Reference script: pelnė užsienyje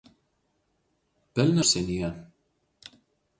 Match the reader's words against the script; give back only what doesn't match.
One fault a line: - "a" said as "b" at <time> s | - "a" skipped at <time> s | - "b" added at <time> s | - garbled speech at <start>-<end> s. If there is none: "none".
none